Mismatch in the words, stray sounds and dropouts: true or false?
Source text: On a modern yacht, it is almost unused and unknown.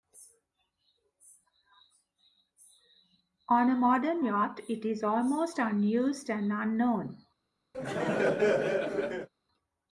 true